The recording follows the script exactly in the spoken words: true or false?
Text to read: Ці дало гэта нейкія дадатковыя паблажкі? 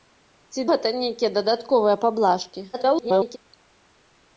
false